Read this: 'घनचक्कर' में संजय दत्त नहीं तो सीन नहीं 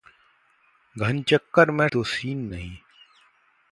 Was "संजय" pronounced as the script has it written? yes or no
no